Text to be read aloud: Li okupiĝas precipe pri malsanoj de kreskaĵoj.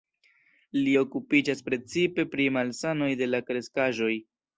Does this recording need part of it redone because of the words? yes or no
yes